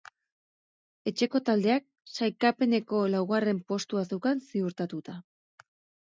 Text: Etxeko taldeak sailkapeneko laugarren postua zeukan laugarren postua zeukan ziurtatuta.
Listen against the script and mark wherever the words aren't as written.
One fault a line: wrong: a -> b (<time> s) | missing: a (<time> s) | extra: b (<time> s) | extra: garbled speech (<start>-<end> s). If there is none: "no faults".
missing: laugarren postua zeukan (4.4 s)